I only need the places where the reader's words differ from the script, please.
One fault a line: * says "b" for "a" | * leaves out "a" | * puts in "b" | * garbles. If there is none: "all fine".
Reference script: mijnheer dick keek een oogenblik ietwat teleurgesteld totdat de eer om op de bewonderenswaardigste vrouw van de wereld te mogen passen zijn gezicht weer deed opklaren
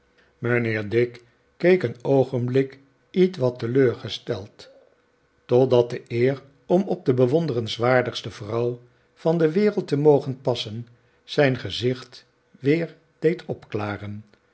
all fine